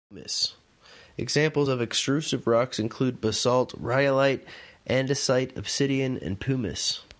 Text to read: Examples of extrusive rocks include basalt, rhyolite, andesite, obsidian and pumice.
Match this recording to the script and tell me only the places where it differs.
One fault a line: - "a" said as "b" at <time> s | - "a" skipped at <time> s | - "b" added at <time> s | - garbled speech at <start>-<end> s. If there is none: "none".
none